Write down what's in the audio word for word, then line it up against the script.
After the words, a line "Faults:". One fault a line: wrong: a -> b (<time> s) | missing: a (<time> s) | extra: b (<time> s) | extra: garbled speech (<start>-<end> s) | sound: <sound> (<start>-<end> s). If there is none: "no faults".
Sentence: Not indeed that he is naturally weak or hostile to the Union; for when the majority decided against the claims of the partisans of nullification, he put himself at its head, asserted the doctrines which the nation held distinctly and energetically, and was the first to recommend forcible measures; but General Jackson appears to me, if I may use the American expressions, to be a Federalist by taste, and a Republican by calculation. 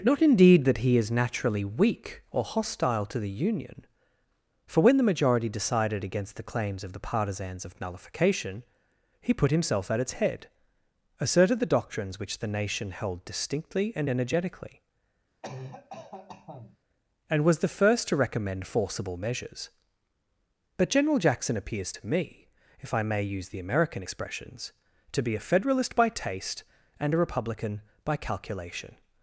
Not indeed that he is naturally weak or hostile to the Union; for when the majority decided against the claims of the partisans of nullification, he put himself at its head, asserted the doctrines which the nation held distinctly and energetically, and was the first to recommend forcible measures; but General Jackson appears to me, if I may use the American expressions, to be a Federalist by taste, and a Republican by calculation.
Faults:
sound: cough (15.4-16.8 s)